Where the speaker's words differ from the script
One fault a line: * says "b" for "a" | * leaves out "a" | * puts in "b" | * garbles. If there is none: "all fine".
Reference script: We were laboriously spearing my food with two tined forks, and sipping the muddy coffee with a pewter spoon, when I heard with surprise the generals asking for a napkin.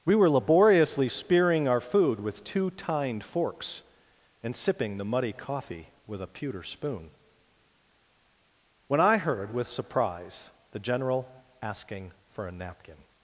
* says "our" for "my"
* says "general" for "generals"